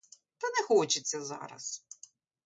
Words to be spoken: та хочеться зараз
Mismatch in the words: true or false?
true